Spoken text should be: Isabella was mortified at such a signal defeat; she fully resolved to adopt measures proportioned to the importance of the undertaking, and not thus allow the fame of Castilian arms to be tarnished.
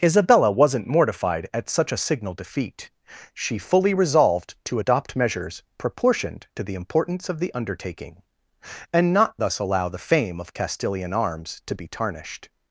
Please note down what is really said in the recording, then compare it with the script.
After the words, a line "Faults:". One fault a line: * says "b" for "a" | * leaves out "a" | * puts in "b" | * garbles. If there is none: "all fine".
Isabella wasn't mortified at such a signal defeat; she fully resolved to adopt measures proportioned to the importance of the undertaking, and not thus allow the fame of Castilian arms to be tarnished.
Faults:
* says "wasn't" for "was"